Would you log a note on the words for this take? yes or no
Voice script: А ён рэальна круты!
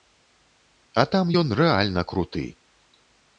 yes